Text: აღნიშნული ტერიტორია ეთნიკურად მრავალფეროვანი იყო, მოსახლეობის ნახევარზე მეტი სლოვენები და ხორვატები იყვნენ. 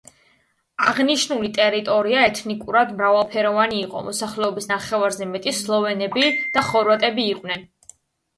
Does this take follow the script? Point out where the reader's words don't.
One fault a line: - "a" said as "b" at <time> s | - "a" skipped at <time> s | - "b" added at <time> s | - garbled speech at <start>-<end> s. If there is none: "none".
none